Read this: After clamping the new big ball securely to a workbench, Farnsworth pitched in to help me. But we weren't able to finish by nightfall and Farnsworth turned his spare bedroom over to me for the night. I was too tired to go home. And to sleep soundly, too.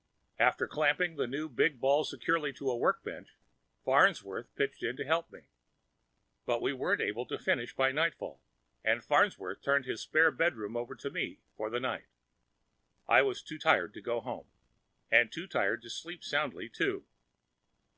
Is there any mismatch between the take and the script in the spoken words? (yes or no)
yes